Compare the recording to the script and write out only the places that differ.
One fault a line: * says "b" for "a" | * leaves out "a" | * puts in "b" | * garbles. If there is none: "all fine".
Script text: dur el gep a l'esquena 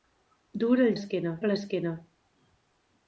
* says "l'esquena" for "gep"